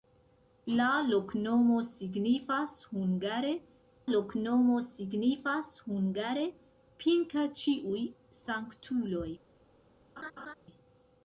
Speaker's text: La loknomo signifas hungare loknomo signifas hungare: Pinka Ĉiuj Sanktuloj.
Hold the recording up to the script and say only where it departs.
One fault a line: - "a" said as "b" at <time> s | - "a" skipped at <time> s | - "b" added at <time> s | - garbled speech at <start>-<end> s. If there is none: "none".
none